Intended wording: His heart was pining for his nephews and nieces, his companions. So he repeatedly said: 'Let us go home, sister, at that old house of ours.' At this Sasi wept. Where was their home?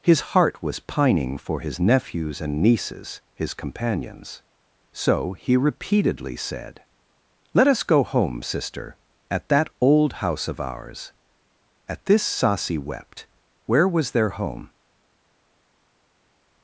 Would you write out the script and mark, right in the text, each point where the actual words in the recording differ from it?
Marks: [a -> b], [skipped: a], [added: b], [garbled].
His heart was pining for his nephews and nieces, his companions. So he repeatedly said: 'Let us go home, sister, at that old house of ours.' At this Sasi wept. Where was their home?